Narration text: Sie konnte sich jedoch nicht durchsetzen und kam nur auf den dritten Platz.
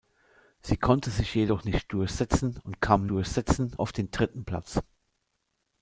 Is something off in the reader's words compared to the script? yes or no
yes